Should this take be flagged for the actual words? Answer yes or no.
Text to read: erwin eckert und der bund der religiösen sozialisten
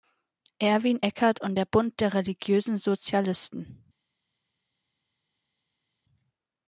no